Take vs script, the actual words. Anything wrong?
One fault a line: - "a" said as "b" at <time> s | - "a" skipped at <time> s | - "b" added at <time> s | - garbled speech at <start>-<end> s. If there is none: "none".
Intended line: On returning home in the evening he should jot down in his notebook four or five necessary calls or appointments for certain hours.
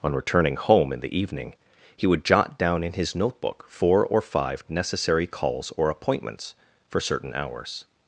- "should" said as "would" at 2.1 s